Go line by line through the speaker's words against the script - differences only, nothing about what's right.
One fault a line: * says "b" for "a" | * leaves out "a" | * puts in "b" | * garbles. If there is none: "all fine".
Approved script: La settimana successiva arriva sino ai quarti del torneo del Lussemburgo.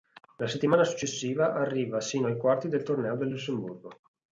all fine